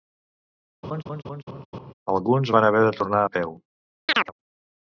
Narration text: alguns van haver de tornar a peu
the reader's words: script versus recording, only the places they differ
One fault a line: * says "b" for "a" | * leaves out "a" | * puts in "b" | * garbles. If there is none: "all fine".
all fine